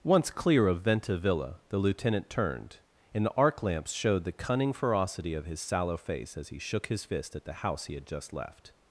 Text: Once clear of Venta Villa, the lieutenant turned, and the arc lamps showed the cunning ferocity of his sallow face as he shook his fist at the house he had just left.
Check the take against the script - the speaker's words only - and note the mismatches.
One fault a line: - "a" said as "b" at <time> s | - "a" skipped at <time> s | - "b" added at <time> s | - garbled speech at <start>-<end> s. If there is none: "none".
none